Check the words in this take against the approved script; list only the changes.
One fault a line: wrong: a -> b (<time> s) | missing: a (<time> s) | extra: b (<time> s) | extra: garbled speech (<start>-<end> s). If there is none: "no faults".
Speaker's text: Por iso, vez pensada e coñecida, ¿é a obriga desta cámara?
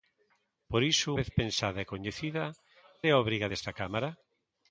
no faults